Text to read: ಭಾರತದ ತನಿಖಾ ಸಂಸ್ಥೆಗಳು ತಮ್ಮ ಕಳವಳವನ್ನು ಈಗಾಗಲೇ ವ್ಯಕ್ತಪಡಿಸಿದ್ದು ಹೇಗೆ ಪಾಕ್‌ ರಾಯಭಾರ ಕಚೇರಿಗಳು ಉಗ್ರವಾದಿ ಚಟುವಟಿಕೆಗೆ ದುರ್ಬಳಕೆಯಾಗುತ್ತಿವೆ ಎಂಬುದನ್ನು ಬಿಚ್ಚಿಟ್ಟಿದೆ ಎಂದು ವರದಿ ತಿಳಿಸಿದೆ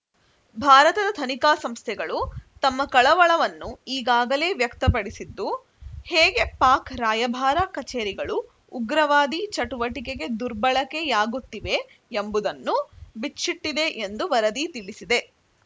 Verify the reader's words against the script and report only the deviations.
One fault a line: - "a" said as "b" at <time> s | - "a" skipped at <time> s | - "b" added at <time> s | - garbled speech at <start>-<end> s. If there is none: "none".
none